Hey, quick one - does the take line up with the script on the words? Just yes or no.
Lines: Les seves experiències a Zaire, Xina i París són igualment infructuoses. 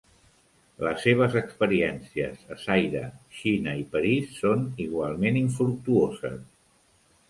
yes